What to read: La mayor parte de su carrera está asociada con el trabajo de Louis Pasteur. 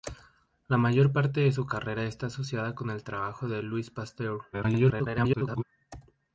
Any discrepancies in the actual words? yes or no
yes